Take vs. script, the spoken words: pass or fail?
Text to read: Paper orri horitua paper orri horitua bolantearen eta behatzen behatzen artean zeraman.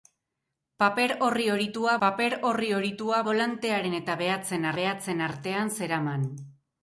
pass